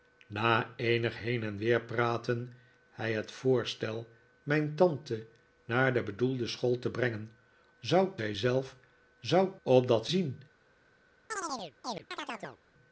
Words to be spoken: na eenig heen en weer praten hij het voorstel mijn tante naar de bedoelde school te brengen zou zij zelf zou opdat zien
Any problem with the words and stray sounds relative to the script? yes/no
yes